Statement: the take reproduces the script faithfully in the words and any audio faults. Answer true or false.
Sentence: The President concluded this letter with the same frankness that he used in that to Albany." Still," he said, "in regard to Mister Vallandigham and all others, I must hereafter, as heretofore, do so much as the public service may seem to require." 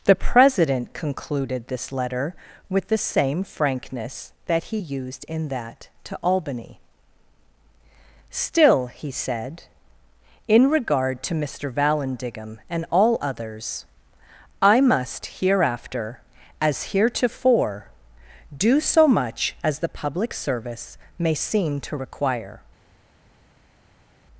true